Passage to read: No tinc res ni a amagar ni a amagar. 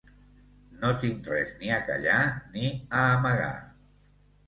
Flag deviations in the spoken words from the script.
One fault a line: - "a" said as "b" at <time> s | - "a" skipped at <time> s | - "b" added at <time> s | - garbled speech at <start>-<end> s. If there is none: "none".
- "amagar" said as "callar" at 1.9 s